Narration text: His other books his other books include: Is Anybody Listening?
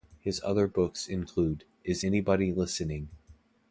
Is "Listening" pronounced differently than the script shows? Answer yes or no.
no